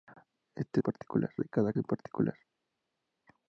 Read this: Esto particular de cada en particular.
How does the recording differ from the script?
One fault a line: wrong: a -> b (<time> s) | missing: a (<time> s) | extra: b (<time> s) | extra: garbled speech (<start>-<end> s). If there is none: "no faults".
no faults